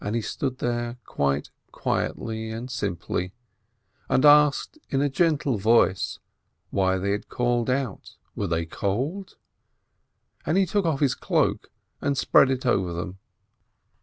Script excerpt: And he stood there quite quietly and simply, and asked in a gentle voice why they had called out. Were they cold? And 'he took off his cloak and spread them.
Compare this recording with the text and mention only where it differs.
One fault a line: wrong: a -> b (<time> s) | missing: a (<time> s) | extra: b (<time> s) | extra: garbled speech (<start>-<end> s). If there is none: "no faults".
extra: it over (12.5 s)